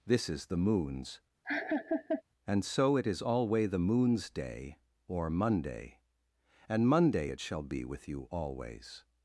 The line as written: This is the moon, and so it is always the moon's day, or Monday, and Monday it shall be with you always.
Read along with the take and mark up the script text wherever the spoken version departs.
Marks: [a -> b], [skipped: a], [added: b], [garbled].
This is the [moon, -> moons] and so it is [always -> alway] the moon's day, or Monday, and Monday it shall be with you always.